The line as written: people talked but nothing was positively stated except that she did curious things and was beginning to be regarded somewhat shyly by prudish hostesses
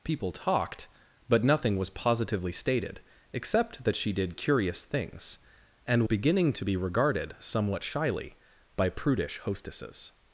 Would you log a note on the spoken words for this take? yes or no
yes